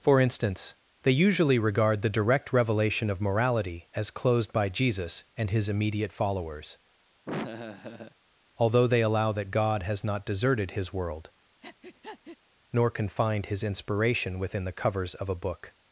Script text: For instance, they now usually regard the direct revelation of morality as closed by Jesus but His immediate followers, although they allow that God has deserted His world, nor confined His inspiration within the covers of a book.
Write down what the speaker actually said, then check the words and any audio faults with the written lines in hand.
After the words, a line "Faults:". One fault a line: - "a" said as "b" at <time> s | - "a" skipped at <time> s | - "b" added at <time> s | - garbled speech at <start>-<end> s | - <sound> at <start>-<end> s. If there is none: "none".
For instance, they usually regard the direct revelation of morality as closed by Jesus and His immediate followers, although they allow that God has not deserted His world, nor confined His inspiration within the covers of a book.
Faults:
- "now" skipped at 1.1 s
- "but" said as "and" at 5.4 s
- laugh at 7.3-8.2 s
- "not" added at 10.0 s
- breath at 11.6-12.4 s